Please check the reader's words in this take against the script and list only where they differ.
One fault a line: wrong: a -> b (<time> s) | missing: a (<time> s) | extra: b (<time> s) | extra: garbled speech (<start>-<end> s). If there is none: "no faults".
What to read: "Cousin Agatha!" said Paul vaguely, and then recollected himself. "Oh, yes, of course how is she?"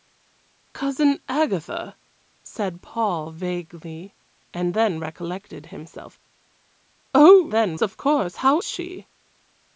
wrong: yes -> then (7.5 s)
missing: is (8.6 s)